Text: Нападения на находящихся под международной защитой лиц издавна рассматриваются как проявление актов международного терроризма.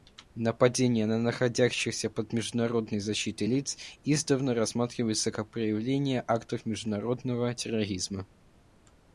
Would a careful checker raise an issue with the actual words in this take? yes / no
no